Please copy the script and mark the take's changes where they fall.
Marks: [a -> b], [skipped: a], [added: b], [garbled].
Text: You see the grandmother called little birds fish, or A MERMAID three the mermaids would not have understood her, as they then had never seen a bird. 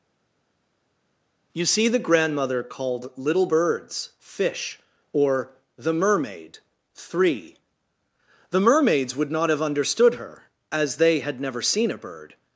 You see the grandmother called little birds fish, or [A -> THE] MERMAID three the mermaids would not have understood her, as they [skipped: then] had never seen a bird.